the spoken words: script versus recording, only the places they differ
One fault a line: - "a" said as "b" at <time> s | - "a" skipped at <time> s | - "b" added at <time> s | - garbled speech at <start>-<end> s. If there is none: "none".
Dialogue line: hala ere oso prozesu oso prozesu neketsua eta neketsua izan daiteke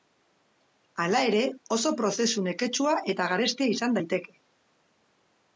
- "oso prozesu" skipped at 2.5 s
- "neketsua" said as "garestia" at 3.4 s